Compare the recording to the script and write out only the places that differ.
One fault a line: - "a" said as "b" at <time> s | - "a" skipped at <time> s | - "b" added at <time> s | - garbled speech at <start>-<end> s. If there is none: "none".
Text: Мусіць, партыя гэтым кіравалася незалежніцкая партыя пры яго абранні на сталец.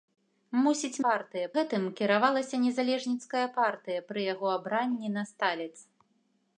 none